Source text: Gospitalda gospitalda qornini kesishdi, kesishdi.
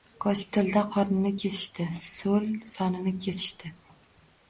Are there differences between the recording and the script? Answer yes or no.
yes